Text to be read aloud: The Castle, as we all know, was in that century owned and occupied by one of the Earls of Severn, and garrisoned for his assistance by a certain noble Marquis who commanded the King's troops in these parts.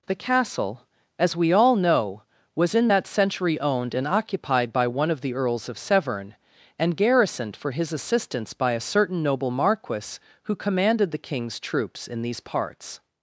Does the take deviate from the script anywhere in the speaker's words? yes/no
no